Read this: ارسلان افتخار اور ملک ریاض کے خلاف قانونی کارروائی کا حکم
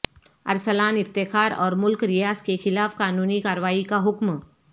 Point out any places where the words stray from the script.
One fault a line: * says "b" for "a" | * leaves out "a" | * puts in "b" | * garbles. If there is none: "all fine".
all fine